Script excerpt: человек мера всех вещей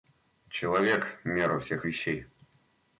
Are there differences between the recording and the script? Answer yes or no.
no